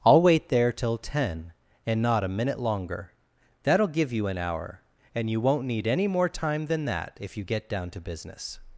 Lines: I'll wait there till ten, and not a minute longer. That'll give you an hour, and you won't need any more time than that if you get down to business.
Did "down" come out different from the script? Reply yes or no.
no